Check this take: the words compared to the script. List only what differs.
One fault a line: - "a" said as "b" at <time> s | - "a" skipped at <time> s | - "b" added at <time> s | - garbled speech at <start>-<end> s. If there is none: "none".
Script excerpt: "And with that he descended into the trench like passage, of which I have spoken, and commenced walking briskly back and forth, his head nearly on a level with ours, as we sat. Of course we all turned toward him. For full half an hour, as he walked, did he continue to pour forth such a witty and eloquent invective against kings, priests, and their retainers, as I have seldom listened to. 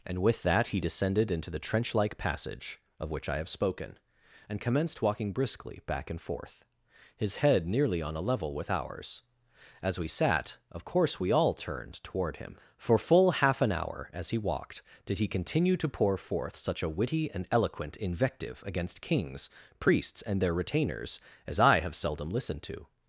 none